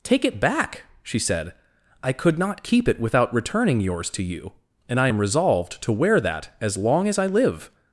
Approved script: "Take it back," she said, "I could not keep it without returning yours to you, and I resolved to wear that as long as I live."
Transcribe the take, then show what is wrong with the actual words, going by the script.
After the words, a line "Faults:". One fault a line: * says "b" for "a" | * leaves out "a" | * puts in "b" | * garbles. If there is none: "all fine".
"Take it back," she said, "I could not keep it without returning yours to you, and I am resolved to wear that as long as I live."
Faults:
* puts in "am"